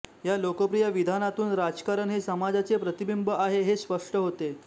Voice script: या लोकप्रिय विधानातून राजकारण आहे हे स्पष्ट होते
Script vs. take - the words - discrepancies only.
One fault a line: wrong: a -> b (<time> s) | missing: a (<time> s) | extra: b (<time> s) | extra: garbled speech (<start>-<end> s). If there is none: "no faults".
extra: हे समाजाचे प्रतिबिंब (2.1 s)